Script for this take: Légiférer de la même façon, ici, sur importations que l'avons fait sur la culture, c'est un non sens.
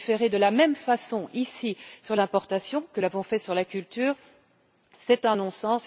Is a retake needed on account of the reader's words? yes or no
no